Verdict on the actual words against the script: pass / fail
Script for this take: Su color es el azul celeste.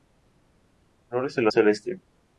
fail